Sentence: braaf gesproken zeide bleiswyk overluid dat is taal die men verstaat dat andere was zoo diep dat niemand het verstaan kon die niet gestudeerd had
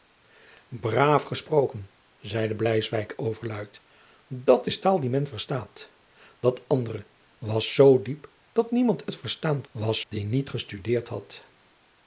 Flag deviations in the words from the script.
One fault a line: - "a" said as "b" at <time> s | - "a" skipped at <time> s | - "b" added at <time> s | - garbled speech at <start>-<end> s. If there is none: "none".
- "kon" said as "was" at 9.7 s